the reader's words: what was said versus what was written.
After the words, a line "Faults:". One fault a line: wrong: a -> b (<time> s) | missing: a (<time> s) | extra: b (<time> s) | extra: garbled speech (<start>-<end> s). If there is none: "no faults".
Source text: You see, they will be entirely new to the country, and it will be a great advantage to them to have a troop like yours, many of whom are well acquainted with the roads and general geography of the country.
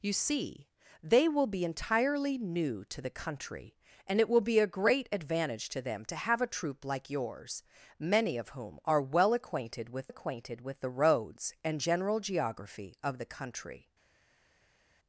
You see, they will be entirely new to the country, and it will be a great advantage to them to have a troop like yours, many of whom are well acquainted with acquainted with the roads and general geography of the country.
Faults:
extra: acquainted with (10.1 s)